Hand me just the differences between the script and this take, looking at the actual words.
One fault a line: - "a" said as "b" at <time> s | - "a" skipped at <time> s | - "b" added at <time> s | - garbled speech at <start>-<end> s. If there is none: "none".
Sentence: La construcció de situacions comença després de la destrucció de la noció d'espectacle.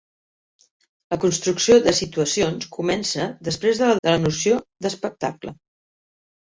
- "destrucció" skipped at 4.0 s